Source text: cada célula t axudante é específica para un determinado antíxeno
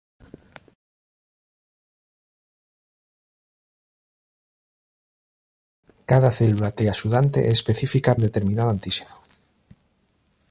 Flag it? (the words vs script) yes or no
yes